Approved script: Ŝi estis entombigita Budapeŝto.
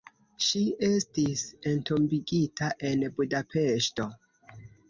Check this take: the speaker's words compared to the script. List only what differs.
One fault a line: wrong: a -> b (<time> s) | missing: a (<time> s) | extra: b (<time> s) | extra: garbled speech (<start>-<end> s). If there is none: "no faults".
extra: en (2.9 s)